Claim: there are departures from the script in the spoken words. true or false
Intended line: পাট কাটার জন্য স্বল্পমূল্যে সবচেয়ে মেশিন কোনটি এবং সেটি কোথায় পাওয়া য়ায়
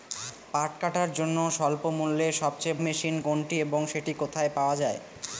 false